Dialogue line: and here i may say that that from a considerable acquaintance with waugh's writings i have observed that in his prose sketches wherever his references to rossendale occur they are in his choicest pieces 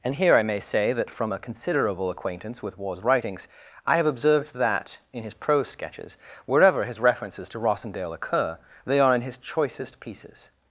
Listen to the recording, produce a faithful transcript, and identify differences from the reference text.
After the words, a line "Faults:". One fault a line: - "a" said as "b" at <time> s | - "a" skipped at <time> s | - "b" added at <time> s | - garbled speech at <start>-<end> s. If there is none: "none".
and here i may say that from a considerable acquaintance with waugh's writings i have observed that in his prose sketches wherever his references to rossendale occur they are in his choicest pieces
Faults:
- "that" skipped at 1.1 s